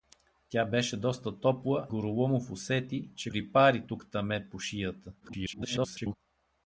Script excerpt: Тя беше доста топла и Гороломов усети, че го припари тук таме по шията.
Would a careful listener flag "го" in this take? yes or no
yes